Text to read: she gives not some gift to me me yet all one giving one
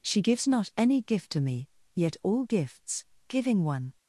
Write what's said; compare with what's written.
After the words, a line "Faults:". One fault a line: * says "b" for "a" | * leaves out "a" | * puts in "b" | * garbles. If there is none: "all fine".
she gives not any gift to me yet all gifts giving one
Faults:
* says "any" for "some"
* leaves out "me"
* says "gifts" for "one"